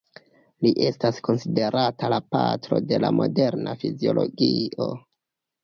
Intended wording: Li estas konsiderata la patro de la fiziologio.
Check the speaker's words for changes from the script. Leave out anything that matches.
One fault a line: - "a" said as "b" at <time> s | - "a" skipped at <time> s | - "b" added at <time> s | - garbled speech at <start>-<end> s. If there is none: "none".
- "moderna" added at 3.2 s